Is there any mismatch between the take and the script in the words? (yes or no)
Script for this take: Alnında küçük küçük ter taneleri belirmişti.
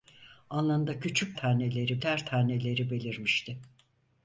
yes